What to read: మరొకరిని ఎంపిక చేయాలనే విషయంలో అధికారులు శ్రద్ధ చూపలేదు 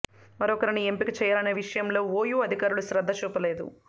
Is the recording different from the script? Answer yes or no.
yes